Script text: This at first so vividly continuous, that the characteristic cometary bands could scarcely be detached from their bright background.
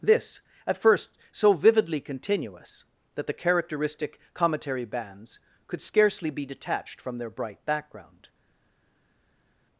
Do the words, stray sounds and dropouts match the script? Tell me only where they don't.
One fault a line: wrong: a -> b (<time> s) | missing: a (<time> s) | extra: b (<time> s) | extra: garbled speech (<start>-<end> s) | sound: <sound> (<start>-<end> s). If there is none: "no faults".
no faults